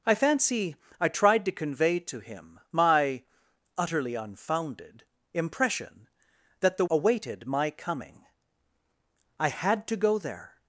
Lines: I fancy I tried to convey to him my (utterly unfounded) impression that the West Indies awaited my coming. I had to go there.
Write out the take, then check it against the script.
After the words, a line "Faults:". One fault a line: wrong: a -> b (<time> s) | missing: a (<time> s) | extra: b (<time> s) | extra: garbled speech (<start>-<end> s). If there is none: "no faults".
I fancy I tried to convey to him my (utterly unfounded) impression that the Awaited my coming. I had to go there.
Faults:
missing: West Indies (6.8 s)